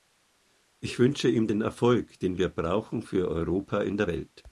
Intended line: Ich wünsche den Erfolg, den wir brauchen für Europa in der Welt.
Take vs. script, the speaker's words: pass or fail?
fail